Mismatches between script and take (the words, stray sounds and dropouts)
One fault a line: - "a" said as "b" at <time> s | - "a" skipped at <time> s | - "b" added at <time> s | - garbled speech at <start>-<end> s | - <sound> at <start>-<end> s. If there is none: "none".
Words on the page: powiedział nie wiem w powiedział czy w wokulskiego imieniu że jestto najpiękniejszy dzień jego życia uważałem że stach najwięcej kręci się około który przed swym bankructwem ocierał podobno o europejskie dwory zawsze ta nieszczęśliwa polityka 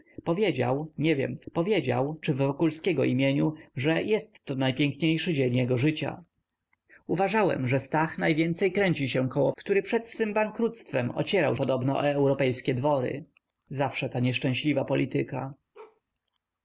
- bark at 15.7-16.0 s